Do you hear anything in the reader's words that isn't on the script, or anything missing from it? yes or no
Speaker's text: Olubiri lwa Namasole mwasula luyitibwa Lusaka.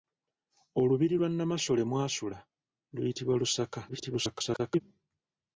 yes